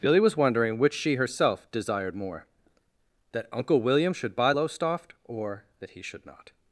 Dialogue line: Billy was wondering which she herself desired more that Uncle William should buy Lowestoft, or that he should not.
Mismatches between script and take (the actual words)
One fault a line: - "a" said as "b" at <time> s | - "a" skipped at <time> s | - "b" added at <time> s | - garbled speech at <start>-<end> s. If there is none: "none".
none